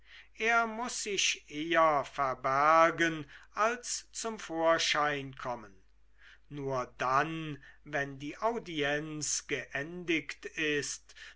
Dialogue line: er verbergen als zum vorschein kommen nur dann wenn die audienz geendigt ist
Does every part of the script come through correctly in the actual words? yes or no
no